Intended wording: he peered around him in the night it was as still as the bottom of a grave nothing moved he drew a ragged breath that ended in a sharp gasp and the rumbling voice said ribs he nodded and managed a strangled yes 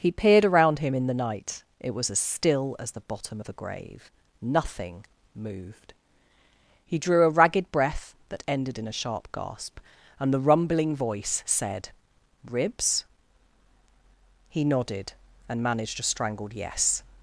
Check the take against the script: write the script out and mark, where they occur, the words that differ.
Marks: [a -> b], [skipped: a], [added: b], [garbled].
he peered around him in the night it was as still as the bottom of a grave nothing moved he drew a ragged breath that ended in a sharp gasp and the rumbling voice said ribs he nodded and managed a strangled yes